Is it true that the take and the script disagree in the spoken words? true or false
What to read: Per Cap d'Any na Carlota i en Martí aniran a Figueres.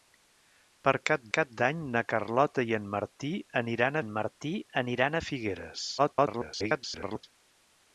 true